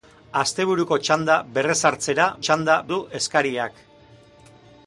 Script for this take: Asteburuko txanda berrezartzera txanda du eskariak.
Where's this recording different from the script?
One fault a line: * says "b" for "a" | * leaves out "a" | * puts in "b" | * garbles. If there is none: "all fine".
all fine